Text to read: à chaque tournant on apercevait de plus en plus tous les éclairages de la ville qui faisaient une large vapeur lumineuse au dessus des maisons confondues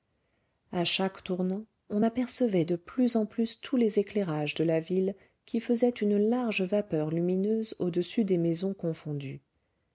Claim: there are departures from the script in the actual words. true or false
false